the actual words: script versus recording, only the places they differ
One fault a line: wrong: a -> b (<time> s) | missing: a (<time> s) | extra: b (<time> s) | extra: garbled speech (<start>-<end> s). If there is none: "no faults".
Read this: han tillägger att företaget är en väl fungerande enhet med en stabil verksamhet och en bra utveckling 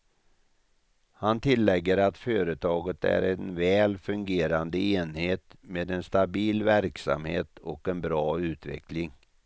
no faults